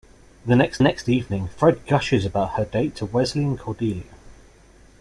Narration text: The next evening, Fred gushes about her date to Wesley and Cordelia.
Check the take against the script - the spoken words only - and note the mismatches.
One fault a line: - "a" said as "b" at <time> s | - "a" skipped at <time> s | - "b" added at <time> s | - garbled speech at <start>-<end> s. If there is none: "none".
- "next" added at 0.8 s